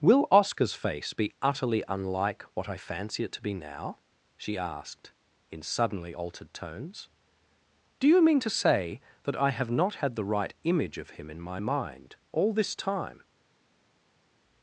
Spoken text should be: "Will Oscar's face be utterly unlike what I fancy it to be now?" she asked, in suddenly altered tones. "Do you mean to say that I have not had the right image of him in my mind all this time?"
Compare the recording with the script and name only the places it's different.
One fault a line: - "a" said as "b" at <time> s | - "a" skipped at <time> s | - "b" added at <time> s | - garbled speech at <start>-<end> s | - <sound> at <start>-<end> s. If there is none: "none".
none